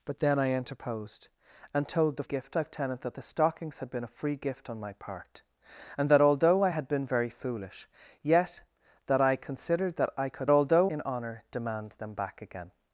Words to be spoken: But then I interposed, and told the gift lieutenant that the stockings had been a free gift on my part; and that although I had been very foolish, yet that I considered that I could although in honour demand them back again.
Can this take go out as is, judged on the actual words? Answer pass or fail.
pass